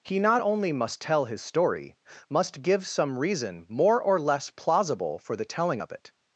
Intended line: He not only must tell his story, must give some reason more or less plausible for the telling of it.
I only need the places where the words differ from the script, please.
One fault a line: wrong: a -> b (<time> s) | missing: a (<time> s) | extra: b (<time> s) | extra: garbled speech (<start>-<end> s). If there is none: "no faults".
no faults